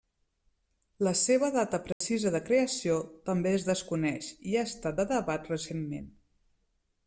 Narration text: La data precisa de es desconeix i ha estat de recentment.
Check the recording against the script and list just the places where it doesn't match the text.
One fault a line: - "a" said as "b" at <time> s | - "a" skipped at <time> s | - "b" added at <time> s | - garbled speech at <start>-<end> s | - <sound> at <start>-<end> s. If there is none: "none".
- "seva" added at 1.2 s
- dropout at 1.9-2.0 s
- "creació també" added at 2.5 s
- "debat" added at 5.1 s